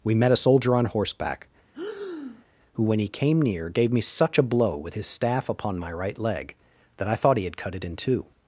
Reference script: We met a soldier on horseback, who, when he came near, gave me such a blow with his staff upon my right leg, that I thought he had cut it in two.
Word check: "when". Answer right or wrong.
right